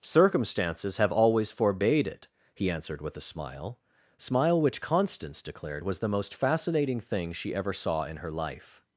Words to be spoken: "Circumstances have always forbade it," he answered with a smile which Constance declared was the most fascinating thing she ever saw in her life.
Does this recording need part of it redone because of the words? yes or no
yes